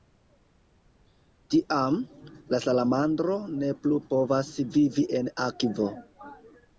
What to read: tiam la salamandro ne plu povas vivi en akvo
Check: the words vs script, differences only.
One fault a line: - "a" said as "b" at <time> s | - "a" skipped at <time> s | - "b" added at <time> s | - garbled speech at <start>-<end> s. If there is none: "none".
none